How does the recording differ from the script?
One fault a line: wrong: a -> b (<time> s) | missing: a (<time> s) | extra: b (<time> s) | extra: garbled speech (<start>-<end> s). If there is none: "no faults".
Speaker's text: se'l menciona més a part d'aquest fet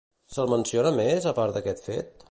no faults